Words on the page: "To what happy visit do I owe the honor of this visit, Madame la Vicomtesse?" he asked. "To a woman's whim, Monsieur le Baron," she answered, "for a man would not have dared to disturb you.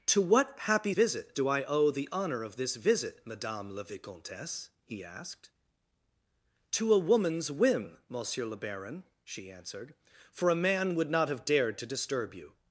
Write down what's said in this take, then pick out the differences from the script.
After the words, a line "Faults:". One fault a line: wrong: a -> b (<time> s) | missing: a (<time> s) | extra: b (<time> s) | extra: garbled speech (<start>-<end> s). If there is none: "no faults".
"To what happy visit do I owe the honor of this visit, Madame la Vicomtesse?" he asked. "To a woman's whim, Monsieur le Baron," she answered, "for a man would not have dared to disturb you.
Faults:
no faults